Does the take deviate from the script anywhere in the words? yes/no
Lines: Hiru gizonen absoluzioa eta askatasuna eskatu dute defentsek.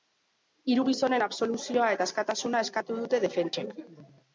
no